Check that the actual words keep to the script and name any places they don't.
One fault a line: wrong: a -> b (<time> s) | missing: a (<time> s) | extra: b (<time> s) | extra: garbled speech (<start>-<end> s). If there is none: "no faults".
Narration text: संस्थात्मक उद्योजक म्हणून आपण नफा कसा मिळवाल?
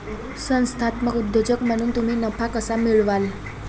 wrong: आपण -> तुम्ही (1.9 s)